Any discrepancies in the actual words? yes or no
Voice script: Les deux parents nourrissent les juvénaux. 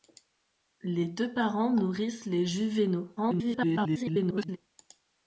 yes